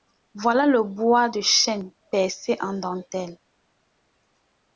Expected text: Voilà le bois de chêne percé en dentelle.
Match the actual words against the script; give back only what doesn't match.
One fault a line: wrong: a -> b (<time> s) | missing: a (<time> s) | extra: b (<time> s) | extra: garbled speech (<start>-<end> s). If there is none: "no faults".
no faults